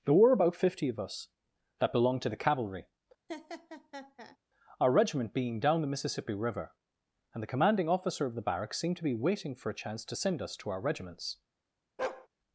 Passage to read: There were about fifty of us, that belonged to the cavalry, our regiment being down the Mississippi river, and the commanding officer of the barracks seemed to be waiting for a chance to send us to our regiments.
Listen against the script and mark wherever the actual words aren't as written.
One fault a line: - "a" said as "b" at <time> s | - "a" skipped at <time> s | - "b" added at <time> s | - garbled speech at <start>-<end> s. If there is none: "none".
none